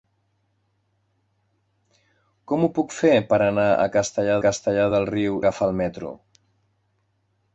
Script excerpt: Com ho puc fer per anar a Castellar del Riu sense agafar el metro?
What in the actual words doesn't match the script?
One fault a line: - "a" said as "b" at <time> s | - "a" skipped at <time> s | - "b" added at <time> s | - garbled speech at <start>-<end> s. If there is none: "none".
- "Castellar" added at 4.5 s
- "sense" skipped at 5.4 s